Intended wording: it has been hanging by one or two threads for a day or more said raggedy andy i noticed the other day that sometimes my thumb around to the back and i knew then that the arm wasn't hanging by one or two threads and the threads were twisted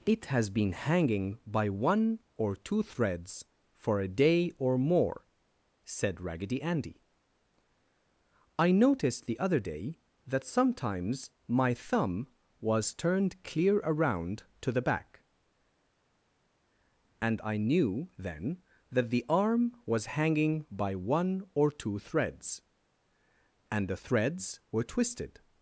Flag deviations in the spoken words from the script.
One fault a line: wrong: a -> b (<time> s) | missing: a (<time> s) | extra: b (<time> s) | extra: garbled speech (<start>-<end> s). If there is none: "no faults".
extra: was turned clear (12.6 s)
wrong: wasn't -> was (19.9 s)